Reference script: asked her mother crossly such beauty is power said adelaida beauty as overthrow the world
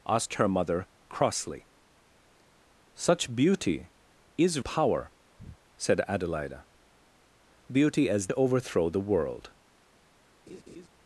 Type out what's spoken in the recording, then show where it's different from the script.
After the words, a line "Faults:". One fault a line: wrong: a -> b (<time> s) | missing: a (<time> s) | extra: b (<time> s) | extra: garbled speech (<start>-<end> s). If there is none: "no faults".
asked her mother crossly such beauty is power said adelaida beauty as overthrow the world
Faults:
no faults